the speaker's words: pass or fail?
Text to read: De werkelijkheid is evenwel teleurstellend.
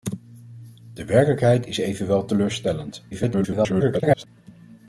fail